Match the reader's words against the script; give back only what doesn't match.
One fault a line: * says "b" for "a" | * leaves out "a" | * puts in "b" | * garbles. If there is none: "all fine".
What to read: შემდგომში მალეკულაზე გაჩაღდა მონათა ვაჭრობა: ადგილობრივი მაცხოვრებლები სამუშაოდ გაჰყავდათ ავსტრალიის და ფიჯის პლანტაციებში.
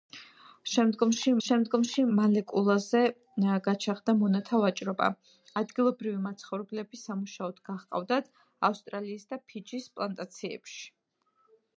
* puts in "შემდგომში"